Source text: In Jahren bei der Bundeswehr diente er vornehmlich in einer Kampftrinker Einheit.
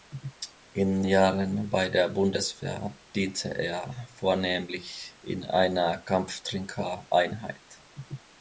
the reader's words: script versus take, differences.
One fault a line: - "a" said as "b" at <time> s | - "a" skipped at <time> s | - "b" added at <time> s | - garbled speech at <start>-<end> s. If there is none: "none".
none